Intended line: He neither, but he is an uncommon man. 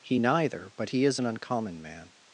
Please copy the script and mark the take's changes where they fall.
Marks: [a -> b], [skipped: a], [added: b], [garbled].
He neither, but he is an uncommon man.